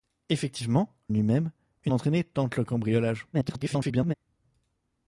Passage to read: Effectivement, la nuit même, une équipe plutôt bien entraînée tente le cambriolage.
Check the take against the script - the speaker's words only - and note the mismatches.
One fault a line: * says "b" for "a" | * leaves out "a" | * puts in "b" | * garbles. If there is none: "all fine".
* leaves out "la"
* leaves out "équipe plutôt bien"
* garbles